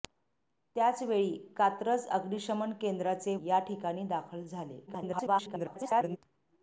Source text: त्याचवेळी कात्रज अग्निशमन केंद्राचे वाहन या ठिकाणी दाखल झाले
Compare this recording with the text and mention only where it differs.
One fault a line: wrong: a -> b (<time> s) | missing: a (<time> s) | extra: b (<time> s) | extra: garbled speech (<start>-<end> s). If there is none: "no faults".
missing: वाहन (3.3 s)
extra: garbled speech (4.9-6.2 s)